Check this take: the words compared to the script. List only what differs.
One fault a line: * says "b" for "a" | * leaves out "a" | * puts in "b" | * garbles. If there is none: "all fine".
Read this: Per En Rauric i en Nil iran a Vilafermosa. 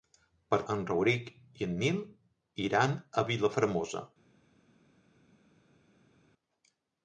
all fine